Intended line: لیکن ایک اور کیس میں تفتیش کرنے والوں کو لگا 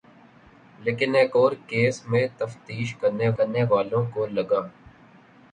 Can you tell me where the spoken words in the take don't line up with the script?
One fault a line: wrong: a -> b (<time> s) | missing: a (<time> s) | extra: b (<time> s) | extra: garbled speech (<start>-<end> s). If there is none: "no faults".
extra: کرنے (3.4 s)